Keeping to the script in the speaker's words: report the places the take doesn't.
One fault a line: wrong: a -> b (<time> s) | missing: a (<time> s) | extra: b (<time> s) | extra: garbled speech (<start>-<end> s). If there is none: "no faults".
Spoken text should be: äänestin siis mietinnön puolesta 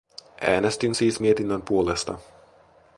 no faults